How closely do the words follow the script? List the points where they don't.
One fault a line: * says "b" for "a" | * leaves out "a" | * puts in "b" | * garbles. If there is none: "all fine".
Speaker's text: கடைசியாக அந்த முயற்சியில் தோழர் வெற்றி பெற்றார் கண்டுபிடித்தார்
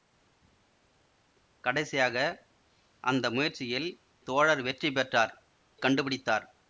all fine